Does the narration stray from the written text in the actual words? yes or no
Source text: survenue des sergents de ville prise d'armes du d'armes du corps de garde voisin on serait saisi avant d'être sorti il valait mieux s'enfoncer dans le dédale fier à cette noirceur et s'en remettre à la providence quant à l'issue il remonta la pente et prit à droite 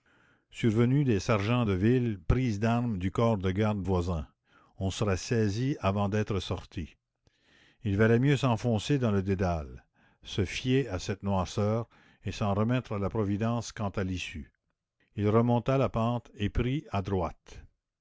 yes